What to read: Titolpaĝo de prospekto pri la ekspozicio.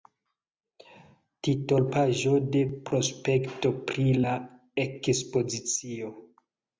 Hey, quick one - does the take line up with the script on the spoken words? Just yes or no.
yes